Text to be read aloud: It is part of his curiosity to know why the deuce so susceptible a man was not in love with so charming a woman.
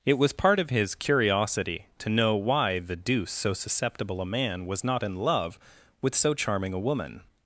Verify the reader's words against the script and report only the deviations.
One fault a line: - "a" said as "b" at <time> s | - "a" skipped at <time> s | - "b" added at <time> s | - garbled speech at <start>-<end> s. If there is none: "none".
- "is" said as "was" at 0.2 s